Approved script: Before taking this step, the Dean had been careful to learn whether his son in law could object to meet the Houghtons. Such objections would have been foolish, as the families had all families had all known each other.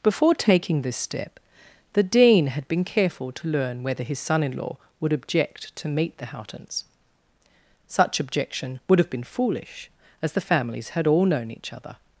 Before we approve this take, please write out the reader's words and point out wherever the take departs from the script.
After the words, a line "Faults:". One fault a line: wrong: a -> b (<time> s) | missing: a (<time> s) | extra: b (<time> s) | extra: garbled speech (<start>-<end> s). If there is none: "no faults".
Before taking this step, the Dean had been careful to learn whether his son in law would object to meet the Houghtons. Such objection would have been foolish, as the families had all known each other.
Faults:
wrong: could -> would (5.0 s)
wrong: objections -> objection (8.2 s)
missing: families had all (11.2 s)